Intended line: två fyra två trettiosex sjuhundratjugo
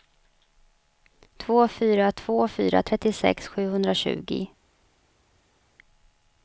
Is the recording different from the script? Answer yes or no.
yes